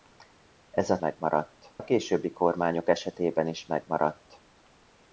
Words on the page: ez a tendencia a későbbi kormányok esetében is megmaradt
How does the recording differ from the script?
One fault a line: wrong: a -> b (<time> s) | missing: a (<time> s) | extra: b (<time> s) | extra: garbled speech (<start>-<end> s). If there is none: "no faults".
wrong: tendencia -> megmaradt (1.0 s)